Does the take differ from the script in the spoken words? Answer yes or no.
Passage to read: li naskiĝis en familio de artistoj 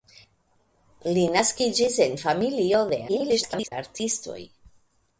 yes